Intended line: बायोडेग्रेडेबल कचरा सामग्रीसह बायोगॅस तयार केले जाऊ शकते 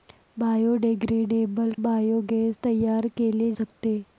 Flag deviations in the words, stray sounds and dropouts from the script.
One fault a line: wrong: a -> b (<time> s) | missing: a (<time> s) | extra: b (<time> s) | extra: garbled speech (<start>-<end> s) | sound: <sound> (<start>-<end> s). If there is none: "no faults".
missing: कचरा सामग्रीसह (1.7 s)
missing: जाऊ (3.5 s)